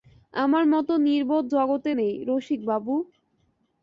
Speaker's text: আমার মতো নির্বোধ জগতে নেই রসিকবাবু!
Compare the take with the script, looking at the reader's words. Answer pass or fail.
pass